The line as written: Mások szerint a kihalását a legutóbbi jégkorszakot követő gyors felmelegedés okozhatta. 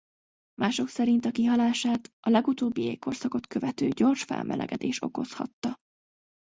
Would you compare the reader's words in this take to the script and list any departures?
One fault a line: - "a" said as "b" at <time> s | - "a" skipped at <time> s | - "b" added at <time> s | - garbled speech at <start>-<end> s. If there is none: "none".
none